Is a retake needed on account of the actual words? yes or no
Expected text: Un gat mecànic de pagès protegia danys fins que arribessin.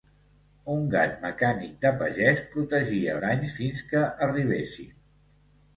no